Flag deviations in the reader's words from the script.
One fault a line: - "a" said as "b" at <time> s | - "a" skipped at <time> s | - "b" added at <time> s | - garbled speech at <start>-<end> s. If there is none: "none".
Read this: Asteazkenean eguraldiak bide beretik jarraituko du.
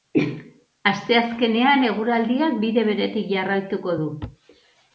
none